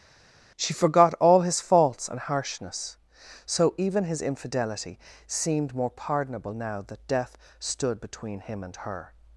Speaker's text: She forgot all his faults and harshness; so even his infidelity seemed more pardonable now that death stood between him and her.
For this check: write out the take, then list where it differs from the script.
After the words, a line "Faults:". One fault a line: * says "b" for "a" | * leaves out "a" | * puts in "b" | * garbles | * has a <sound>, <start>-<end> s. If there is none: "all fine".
She forgot all his faults and harshness; so even his infidelity seemed more pardonable now that death stood between him and her.
Faults:
all fine